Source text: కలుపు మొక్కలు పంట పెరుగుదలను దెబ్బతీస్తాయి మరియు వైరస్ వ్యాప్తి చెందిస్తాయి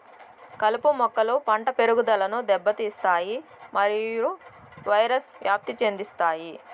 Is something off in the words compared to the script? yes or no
no